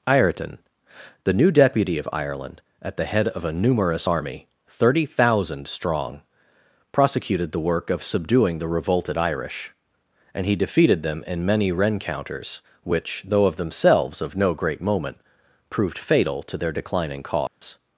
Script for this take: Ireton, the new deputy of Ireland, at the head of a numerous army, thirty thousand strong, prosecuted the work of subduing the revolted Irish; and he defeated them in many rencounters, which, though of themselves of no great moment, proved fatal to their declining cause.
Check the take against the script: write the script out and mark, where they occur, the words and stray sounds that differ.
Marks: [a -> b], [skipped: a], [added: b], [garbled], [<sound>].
Ireton, the new deputy of Ireland, at the head of a numerous army, thirty thousand strong, prosecuted the work of subduing the revolted Irish; and he defeated them in many rencounters, which, though of themselves of no great moment, proved fatal to their declining cause. [dropout]